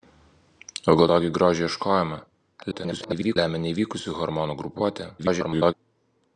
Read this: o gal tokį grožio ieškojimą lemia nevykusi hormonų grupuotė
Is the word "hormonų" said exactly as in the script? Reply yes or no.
yes